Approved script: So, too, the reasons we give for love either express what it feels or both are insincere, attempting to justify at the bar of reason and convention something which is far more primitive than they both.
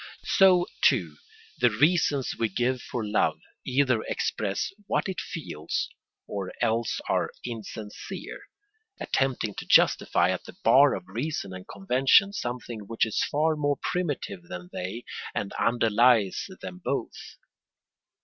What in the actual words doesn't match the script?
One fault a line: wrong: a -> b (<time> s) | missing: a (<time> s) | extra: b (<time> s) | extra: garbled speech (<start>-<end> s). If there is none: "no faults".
wrong: both -> else (6.6 s)
extra: and underlies them (15.3 s)